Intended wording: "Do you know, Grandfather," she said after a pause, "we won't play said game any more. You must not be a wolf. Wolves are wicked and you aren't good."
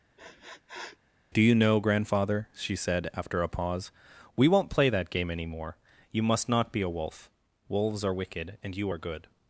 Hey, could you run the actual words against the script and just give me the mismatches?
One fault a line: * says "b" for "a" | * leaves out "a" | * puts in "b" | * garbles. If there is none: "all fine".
* says "that" for "said"
* says "are" for "aren't"